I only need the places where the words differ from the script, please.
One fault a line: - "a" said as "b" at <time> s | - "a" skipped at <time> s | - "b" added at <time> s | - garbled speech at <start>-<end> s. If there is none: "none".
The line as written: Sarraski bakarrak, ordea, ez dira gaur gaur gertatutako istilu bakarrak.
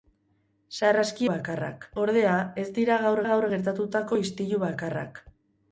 none